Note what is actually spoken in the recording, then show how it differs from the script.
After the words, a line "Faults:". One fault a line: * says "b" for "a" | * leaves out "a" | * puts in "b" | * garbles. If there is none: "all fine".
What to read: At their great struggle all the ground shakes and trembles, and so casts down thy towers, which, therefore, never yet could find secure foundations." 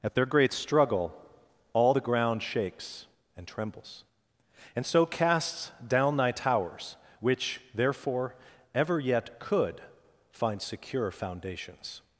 At their great struggle all the ground shakes and trembles, and so casts down thy towers, which, therefore, ever yet could find secure foundations."
Faults:
* says "ever" for "never"